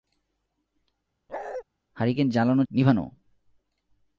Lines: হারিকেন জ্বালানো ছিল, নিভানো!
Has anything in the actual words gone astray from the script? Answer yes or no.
yes